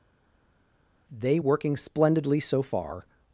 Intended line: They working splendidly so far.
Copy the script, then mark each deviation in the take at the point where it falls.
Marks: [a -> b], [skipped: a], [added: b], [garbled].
They working splendidly so far.